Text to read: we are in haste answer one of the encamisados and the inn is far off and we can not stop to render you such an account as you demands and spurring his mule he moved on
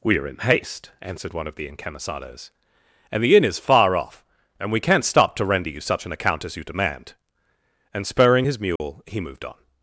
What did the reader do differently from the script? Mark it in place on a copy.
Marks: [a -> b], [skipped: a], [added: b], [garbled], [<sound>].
we are in haste [answer -> answered] one of the encamisados and the inn is far off and we can not stop to render you such an account as you [demands -> demand] and spurring his mule [dropout] he moved on